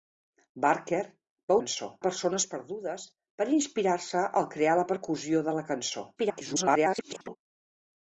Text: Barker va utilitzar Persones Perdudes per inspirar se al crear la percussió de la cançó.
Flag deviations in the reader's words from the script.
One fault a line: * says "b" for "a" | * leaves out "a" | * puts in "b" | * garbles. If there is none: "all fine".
* says "cançó" for "utilitzar"
* garbles